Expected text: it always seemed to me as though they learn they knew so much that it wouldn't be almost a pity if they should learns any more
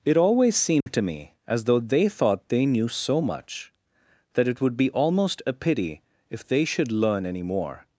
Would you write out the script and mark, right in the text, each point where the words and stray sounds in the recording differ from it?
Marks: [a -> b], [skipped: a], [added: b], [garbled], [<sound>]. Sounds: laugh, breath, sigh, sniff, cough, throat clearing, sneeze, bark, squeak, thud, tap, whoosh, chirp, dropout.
it always seemed [dropout] to me as though they [learn -> thought] they knew so much that it [wouldn't -> would] be almost a pity if they should [learns -> learn] any more